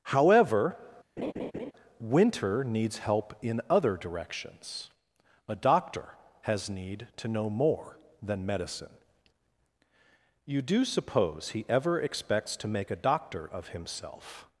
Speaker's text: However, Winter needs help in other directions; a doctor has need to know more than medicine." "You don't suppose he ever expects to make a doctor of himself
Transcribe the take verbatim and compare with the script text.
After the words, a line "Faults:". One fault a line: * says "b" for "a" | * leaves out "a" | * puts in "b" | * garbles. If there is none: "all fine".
However, Winter needs help in other directions; a doctor has need to know more than medicine." "You do suppose he ever expects to make a doctor of himself
Faults:
* says "do" for "don't"